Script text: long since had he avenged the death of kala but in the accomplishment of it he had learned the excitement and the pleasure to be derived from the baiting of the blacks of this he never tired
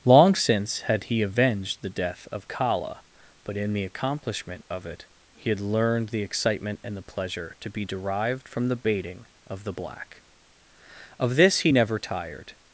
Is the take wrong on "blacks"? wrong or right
wrong